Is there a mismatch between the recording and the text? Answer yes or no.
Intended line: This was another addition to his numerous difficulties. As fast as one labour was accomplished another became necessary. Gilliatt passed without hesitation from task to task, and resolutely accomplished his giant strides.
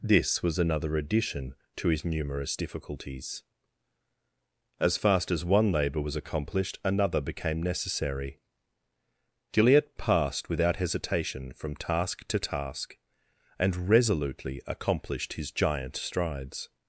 no